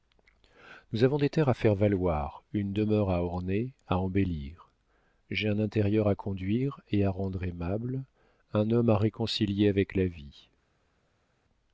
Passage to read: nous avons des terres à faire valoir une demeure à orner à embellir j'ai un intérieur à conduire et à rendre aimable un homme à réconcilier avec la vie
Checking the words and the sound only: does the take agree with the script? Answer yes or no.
yes